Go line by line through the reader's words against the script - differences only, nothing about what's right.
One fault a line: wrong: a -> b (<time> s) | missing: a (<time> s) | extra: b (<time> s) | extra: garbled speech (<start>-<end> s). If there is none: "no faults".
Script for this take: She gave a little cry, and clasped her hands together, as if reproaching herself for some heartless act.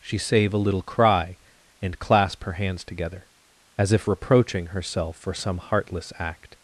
wrong: gave -> save (0.2 s)
wrong: clasped -> clasp (2.0 s)